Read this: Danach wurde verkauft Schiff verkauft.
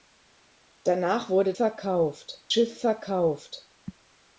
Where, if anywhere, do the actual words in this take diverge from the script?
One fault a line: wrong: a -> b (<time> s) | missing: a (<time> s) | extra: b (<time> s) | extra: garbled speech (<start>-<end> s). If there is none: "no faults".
no faults